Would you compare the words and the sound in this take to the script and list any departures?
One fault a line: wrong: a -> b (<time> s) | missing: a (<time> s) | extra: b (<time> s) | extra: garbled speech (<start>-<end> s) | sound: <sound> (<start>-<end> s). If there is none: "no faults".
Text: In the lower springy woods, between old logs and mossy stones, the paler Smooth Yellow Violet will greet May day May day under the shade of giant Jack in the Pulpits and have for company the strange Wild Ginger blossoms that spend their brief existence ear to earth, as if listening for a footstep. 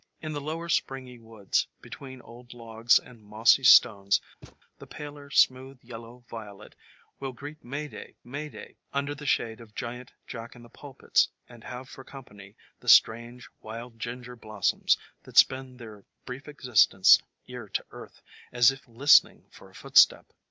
sound: thud (4.4-4.6 s)